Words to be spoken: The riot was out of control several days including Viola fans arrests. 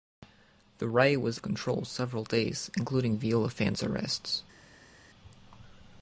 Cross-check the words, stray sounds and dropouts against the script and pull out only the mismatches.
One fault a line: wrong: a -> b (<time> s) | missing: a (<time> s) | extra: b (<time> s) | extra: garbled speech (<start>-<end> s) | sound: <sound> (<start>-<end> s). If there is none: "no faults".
missing: out (1.4 s)